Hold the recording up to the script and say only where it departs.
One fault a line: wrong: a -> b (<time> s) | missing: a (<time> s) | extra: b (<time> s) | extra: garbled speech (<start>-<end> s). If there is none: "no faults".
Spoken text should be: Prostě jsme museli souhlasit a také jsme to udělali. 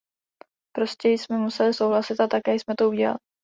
no faults